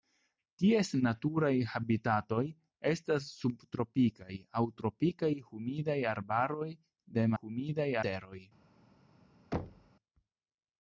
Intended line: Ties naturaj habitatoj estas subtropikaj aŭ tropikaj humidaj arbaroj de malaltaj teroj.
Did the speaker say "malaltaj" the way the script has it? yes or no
no